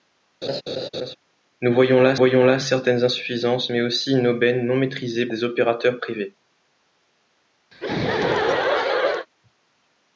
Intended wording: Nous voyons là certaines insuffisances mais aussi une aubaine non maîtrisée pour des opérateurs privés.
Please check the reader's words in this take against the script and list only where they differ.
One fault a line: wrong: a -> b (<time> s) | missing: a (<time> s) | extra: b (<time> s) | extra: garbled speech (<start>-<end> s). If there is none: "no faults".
extra: voyons là (2.1 s)
missing: pour (5.3 s)